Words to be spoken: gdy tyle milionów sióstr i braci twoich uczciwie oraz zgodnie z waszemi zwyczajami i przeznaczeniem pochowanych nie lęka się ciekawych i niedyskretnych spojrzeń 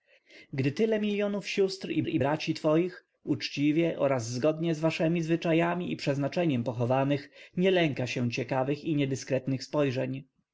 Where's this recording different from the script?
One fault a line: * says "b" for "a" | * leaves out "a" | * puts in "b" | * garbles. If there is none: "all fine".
* puts in "i"